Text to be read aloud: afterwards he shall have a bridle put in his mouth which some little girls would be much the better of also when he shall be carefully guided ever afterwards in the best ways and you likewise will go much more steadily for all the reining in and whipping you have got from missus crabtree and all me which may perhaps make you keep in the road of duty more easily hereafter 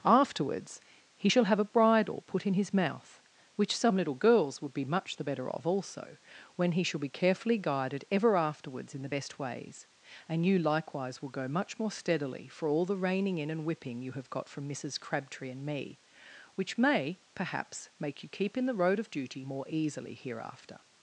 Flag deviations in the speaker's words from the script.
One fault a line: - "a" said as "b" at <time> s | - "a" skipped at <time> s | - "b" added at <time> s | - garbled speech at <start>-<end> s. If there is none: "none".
- "all" skipped at 15.6 s